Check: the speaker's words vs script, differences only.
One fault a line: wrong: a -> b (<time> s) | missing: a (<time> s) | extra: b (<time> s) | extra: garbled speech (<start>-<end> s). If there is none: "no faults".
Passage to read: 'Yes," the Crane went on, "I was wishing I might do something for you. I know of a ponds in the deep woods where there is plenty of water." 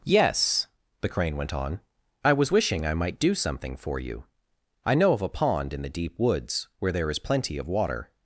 wrong: ponds -> pond (5.3 s)